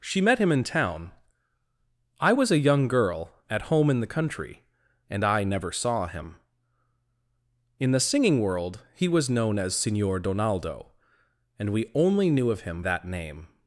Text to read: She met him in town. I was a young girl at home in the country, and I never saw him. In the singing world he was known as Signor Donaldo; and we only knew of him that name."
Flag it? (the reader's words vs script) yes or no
no